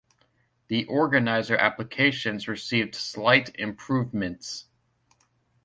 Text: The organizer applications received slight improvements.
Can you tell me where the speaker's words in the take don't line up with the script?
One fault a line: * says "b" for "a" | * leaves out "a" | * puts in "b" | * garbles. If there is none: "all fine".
all fine